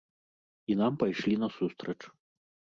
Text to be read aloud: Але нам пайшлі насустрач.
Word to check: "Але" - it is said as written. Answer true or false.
false